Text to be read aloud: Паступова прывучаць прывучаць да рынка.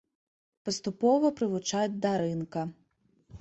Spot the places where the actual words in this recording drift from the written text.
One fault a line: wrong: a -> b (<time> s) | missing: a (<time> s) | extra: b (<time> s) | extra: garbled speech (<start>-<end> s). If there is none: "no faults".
missing: прывучаць (2.0 s)